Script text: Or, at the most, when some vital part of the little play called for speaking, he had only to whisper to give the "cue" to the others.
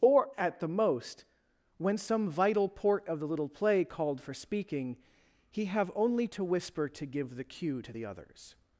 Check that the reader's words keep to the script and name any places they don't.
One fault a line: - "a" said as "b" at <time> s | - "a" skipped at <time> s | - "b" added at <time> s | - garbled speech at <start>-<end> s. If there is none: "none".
- "part" said as "port" at 2.7 s
- "had" said as "have" at 5.7 s